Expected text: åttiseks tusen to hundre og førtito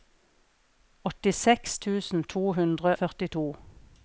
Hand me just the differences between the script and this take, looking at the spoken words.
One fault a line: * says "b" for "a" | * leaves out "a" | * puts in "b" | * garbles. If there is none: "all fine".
* leaves out "og"